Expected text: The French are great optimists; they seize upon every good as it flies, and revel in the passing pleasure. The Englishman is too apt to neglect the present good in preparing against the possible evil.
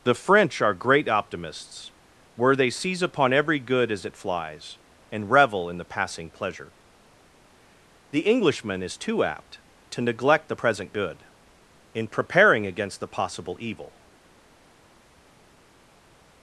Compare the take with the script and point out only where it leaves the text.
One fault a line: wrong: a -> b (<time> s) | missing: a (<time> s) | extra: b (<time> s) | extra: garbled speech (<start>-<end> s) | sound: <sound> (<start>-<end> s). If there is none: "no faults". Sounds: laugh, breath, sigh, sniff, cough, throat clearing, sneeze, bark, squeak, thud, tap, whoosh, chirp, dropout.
extra: where (2.3 s)